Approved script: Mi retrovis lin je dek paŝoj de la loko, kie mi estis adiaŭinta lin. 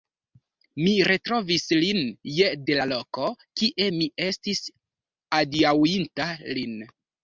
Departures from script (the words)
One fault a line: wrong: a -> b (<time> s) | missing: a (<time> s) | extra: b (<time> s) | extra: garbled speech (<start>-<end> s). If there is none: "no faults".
missing: dek paŝoj (2.5 s)